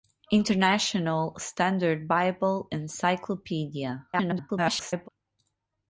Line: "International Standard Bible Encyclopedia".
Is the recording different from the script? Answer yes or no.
yes